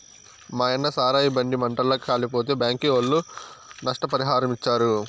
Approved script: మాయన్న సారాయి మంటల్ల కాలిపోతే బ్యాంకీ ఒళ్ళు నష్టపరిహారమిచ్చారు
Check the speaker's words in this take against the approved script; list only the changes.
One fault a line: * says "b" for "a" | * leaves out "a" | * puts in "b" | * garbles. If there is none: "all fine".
* puts in "బండి"